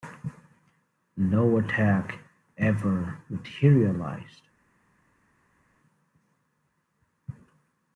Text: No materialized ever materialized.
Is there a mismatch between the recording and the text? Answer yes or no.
yes